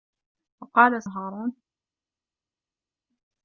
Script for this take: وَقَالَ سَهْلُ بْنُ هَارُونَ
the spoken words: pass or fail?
fail